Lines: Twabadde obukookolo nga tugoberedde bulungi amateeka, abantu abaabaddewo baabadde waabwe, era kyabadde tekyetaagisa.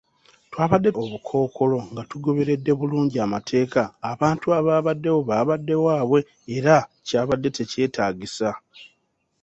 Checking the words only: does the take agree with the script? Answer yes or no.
yes